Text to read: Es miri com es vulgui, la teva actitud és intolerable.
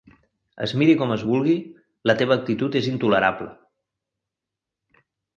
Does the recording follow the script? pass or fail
pass